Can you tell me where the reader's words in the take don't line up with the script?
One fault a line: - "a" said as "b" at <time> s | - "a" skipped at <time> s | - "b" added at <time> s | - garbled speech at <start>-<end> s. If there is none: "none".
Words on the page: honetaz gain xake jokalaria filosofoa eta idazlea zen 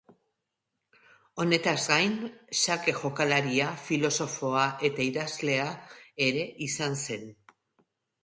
- "ere izan" added at 6.3 s